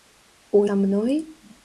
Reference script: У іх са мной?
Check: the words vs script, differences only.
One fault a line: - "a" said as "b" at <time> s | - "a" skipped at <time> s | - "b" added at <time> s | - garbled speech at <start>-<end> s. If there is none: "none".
- "іх" skipped at 0.6 s